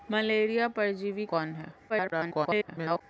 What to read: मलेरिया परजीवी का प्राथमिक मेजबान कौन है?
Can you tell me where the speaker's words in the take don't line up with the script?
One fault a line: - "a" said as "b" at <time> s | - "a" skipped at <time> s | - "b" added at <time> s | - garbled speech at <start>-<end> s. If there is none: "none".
- "का प्राथमिक मेजबान" skipped at 1.2 s
- garbled speech at 1.9-3.0 s